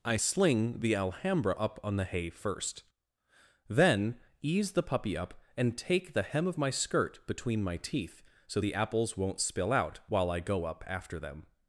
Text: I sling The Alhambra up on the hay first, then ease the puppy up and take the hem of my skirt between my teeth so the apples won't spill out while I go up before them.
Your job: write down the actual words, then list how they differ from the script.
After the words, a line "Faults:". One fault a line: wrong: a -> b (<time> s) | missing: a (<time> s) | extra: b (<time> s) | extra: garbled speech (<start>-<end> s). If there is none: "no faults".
I sling The Alhambra up on the hay first, then ease the puppy up and take the hem of my skirt between my teeth so the apples won't spill out while I go up after them.
Faults:
wrong: before -> after (10.8 s)